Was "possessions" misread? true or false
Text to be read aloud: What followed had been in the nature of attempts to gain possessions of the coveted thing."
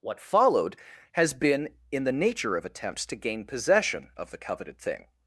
true